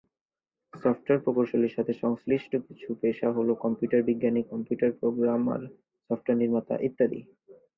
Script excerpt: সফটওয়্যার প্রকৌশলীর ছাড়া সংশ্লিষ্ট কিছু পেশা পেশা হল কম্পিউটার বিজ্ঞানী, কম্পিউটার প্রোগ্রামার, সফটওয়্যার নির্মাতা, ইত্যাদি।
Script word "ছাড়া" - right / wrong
wrong